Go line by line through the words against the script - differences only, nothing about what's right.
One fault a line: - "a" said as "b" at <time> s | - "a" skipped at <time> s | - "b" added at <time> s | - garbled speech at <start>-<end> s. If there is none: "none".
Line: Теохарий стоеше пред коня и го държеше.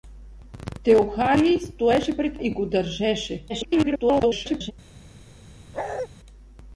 - "коня" skipped at 2.4 s
- garbled speech at 3.5-4.7 s